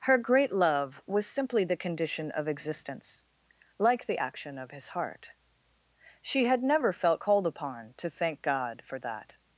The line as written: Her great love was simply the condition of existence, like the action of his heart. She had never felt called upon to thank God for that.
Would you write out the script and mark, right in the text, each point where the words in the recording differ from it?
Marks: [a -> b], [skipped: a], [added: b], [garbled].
Her great love was simply the condition of existence, like the action of his heart. She had never felt called upon to thank God for that.